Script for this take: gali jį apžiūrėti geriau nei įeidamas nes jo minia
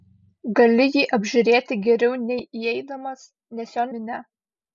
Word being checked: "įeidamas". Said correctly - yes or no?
yes